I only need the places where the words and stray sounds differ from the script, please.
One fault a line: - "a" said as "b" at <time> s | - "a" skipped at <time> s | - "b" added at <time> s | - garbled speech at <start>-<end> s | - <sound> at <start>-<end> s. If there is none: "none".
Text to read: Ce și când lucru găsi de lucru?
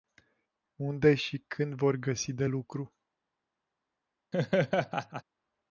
- "Ce" said as "Unde" at 0.8 s
- "lucru" said as "vor" at 1.7 s
- laugh at 4.3-5.2 s